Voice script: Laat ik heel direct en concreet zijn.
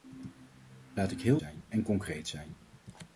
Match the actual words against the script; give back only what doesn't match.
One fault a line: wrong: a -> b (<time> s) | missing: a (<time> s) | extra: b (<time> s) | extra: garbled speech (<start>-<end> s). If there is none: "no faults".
wrong: direct -> zijn (1.4 s)